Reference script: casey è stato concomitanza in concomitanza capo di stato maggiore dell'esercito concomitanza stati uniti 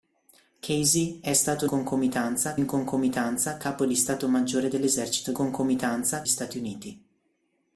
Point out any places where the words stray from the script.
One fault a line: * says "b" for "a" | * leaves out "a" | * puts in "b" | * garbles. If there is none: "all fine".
all fine